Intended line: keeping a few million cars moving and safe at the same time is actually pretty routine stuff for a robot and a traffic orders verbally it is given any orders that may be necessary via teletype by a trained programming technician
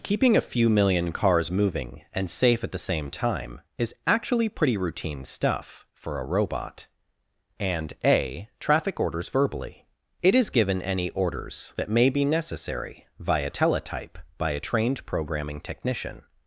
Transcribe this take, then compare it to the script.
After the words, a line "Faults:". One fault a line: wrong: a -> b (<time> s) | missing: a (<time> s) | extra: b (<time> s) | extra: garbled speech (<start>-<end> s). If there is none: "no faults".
keeping a few million cars moving and safe at the same time is actually pretty routine stuff for a robot and a traffic orders verbally it is given any orders that may be necessary via teletype by a trained programming technician
Faults:
no faults